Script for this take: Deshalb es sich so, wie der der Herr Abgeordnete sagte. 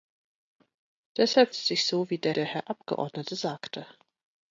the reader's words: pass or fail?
pass